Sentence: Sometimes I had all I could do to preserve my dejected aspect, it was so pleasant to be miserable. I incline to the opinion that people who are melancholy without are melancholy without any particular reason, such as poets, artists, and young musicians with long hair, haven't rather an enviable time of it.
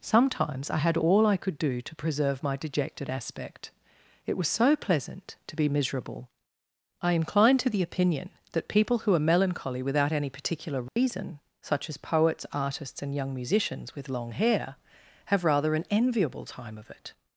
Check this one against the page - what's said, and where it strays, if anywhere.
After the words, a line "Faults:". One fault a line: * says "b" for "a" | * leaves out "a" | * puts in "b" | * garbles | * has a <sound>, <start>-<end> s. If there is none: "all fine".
Sometimes I had all I could do to preserve my dejected aspect, it was so pleasant to be miserable. I incline to the opinion that people who are melancholy without any particular reason, such as poets, artists, and young musicians with long hair, have rather an enviable time of it.
Faults:
* leaves out "are melancholy without"
* has a dropout, 10.9-11.0 s
* says "have" for "haven't"